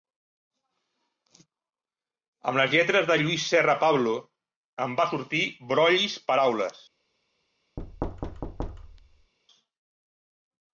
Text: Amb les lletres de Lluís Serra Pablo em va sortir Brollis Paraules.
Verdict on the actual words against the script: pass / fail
pass